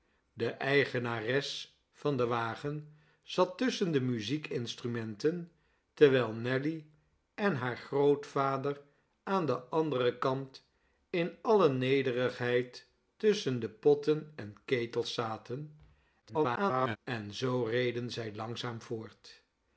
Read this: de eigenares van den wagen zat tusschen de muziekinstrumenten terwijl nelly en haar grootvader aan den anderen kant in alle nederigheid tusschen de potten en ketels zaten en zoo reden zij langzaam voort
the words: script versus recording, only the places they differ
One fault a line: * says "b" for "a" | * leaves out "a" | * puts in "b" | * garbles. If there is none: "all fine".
* garbles